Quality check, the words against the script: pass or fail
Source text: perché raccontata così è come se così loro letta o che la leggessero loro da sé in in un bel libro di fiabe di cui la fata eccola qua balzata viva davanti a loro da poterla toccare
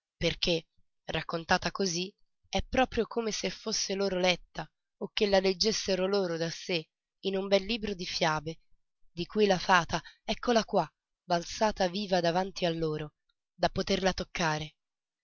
fail